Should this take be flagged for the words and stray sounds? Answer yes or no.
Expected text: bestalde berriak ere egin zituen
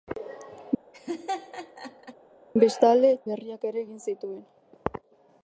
yes